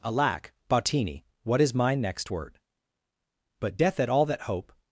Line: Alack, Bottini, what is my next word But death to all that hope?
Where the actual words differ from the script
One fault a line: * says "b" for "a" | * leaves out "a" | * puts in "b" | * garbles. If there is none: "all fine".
* says "at" for "to"